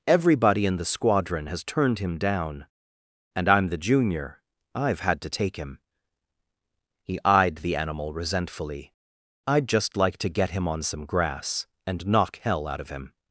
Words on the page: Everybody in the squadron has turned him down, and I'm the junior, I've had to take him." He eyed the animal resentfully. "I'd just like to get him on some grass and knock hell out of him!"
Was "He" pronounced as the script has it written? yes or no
yes